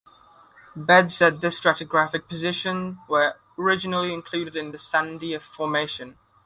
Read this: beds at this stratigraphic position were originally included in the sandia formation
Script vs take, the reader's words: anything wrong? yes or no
no